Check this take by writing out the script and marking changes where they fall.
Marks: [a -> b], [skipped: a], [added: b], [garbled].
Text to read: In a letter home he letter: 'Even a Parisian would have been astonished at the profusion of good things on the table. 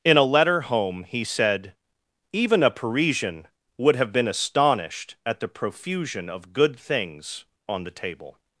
In a letter home he [letter: -> said] 'Even a Parisian would have been astonished at the profusion of good things on the table.